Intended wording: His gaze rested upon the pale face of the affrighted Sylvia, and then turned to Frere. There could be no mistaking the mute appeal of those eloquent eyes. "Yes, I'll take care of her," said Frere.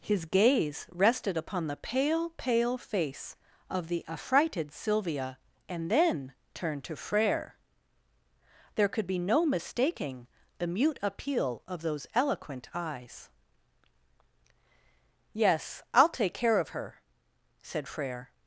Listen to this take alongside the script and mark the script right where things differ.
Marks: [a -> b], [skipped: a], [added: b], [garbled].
His gaze rested upon the pale [added: pale] face of the affrighted Sylvia, and then turned to Frere. There could be no mistaking the mute appeal of those eloquent eyes. "Yes, I'll take care of her," said Frere.